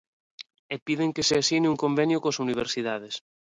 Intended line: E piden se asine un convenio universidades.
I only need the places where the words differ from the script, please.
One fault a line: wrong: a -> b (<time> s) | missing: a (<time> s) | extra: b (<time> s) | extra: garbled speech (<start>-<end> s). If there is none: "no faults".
extra: que (1.1 s)
extra: coas (2.2 s)